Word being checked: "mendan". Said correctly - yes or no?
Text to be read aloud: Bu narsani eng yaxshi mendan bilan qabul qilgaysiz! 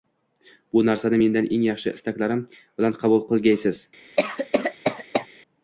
no